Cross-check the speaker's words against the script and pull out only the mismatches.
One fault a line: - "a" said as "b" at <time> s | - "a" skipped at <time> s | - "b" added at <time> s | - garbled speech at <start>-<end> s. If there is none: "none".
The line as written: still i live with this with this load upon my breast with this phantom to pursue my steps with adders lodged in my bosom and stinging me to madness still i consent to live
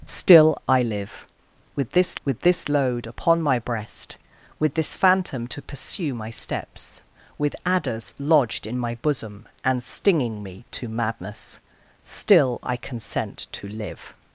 none